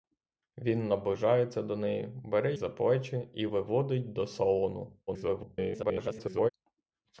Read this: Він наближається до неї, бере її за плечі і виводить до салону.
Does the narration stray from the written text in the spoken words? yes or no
yes